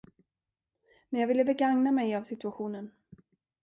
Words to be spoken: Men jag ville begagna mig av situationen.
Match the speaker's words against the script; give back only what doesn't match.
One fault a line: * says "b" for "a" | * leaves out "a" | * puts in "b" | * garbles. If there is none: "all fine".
all fine